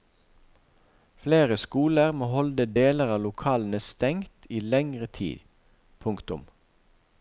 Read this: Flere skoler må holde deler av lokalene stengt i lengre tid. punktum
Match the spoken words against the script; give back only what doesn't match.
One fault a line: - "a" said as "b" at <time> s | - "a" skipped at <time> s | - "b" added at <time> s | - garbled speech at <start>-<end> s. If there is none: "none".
none